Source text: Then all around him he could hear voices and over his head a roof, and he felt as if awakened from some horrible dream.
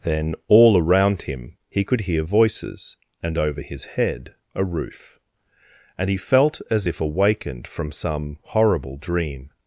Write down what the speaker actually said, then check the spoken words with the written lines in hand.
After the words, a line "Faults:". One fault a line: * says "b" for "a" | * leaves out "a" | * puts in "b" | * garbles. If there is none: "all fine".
Then all around him he could hear voices and over his head a roof, and he felt as if awakened from some horrible dream.
Faults:
all fine